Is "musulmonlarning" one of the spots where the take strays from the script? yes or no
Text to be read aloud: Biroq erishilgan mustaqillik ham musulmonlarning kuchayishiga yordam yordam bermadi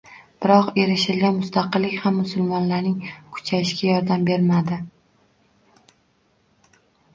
no